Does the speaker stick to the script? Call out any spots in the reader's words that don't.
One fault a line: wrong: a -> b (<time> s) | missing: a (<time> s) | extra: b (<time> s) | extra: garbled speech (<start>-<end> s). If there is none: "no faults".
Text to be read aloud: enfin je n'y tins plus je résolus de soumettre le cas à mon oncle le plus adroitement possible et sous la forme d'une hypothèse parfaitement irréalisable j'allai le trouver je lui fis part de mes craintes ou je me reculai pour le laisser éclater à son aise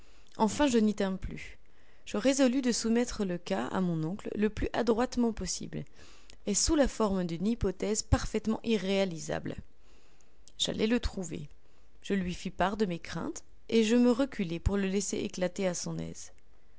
wrong: ou -> et (13.7 s)